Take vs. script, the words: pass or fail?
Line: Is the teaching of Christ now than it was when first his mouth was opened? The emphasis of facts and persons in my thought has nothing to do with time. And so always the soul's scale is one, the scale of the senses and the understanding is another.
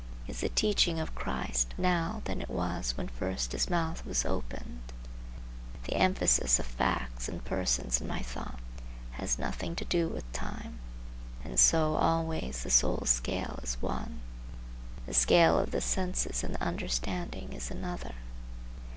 pass